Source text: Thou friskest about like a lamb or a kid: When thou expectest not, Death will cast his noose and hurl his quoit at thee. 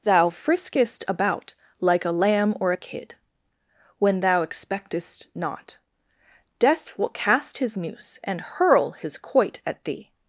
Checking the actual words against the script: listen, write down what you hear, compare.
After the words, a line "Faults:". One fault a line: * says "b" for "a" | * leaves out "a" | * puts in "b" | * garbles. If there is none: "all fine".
Thou friskest about like a lamb or a kid: When thou expectest not, Death will cast his noose and hurl his quoit at thee.
Faults:
all fine